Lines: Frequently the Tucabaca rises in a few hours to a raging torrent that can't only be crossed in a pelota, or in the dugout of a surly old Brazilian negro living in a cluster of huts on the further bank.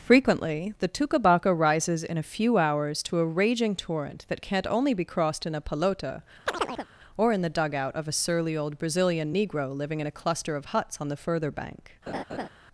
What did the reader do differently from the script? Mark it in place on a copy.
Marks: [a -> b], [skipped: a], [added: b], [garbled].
Frequently the Tucabaca rises in a few hours to a raging torrent that can't only be crossed in a pelota, or in the dugout of a surly old Brazilian negro living in a cluster of huts on the further bank.